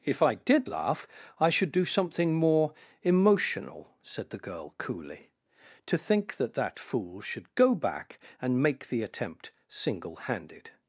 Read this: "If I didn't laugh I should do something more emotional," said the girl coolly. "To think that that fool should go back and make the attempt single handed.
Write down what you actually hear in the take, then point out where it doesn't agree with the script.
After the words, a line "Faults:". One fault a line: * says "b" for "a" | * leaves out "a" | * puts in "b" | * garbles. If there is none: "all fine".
"If I did laugh I should do something more emotional," said the girl coolly. "To think that that fool should go back and make the attempt single handed.
Faults:
* says "did" for "didn't"